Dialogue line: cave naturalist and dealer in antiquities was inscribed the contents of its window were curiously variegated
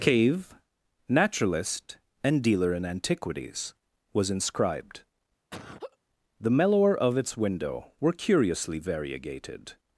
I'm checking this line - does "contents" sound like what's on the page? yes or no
no